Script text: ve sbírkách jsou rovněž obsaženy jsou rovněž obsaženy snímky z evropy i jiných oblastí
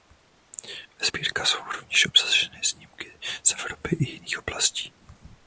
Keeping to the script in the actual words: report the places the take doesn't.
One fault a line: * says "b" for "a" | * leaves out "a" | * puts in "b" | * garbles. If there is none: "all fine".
* leaves out "jsou rovněž obsaženy"